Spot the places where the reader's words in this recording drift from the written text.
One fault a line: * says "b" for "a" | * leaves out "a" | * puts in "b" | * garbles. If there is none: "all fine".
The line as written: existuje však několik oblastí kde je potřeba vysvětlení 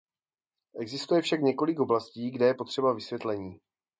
all fine